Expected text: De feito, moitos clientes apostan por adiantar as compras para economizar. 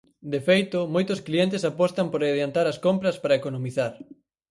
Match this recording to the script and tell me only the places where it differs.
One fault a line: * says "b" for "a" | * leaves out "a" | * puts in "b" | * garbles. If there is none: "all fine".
all fine